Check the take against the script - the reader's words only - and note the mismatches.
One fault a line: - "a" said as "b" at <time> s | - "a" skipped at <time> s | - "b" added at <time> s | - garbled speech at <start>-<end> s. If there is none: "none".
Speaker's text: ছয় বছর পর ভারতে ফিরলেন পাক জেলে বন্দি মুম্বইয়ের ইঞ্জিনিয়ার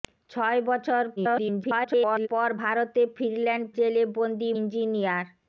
- garbled speech at 1.2-2.3 s
- "পাক" skipped at 3.6 s
- "মুম্বইয়ের" skipped at 4.5 s